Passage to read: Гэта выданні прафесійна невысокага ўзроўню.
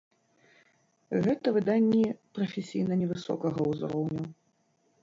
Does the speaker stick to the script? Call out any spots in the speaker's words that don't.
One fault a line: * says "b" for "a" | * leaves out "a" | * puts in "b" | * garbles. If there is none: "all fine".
all fine